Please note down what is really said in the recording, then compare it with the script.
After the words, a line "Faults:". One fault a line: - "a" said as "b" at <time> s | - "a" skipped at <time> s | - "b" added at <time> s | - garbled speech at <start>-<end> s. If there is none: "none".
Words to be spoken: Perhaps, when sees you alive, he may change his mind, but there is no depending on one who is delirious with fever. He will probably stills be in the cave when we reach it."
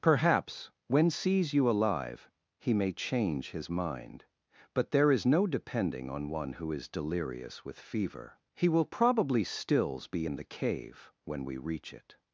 Perhaps, when sees you alive, he may change his mind, but there is no depending on one who is delirious with fever. He will probably stills be in the cave when we reach it."
Faults:
none